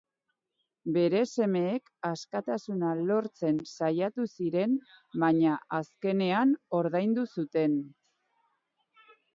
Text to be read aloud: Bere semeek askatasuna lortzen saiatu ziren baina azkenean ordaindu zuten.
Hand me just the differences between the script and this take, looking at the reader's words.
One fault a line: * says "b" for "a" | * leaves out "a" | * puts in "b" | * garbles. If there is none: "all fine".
all fine